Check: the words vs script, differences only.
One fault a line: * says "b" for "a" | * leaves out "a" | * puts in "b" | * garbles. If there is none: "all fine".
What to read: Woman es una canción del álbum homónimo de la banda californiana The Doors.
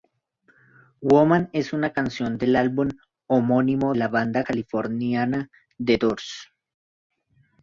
* leaves out "de"